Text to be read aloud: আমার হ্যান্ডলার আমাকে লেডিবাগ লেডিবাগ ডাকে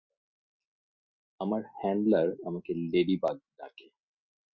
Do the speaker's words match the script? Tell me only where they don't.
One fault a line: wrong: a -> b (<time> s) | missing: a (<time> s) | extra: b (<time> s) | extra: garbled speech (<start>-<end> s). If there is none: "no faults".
missing: লেডিবাগ (3.4 s)